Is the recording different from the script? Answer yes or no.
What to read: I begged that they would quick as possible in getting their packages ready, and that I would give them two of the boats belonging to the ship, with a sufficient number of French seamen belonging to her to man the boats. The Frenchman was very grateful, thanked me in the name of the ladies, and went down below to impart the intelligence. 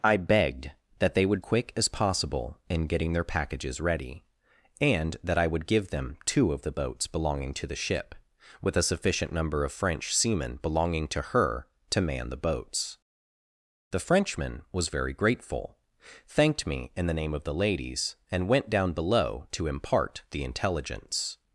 no